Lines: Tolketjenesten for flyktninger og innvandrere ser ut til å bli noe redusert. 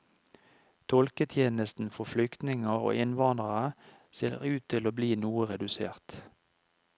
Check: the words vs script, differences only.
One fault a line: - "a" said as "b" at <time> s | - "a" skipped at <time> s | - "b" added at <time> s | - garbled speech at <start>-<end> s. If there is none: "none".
none